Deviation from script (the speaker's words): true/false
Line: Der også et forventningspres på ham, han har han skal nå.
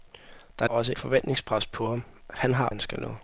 false